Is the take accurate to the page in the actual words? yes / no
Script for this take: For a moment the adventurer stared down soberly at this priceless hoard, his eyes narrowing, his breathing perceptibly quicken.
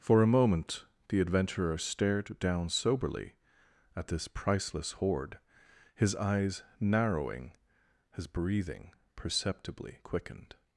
no